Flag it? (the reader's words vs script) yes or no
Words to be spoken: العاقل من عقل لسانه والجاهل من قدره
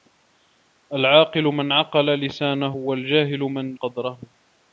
no